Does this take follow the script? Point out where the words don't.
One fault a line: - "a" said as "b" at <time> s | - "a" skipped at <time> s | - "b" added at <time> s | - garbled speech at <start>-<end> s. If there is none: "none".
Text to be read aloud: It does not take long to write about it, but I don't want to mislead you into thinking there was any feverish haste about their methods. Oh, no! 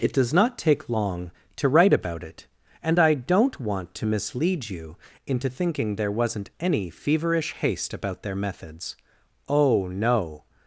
- "but" said as "and" at 2.8 s
- "was" said as "wasn't" at 6.1 s